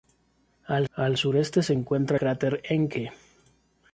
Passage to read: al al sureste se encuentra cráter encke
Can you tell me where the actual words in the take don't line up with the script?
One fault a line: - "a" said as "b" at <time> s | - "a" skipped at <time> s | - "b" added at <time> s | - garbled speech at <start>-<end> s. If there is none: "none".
none